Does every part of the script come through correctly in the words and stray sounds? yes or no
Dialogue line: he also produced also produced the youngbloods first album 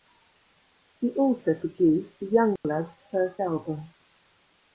no